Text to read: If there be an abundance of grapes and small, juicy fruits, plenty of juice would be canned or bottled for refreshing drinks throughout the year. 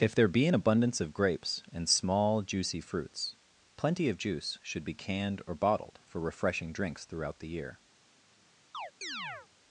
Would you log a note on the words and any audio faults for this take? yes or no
yes